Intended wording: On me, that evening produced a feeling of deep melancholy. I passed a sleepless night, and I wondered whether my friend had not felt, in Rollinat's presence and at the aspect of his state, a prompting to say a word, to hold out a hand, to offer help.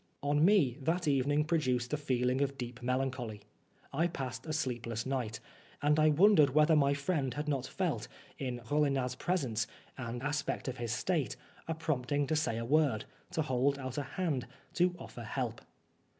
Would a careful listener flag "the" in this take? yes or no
yes